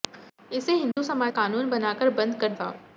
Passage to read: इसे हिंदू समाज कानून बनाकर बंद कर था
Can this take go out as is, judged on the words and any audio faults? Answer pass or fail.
fail